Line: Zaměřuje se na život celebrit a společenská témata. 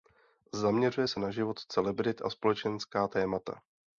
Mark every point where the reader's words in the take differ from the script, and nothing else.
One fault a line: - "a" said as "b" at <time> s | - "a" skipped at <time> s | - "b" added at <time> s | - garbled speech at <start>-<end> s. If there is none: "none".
none